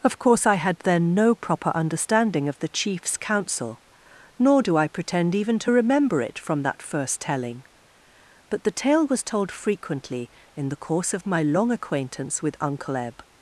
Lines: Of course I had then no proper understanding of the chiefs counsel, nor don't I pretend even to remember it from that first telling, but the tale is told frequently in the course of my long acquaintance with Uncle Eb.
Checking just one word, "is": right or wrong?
wrong